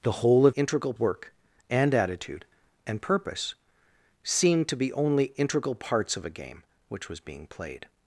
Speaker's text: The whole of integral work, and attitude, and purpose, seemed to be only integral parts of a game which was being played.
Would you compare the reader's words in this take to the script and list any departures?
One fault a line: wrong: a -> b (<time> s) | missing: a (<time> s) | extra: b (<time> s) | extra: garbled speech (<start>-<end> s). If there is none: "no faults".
no faults